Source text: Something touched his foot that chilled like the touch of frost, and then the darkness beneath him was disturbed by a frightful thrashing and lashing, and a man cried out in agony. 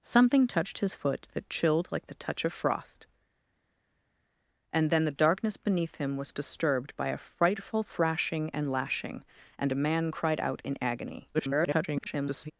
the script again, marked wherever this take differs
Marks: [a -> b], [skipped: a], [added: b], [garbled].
Something touched his foot that chilled like the touch of frost, and then the darkness beneath him was disturbed by a frightful thrashing and lashing, and a man cried out in agony. [garbled]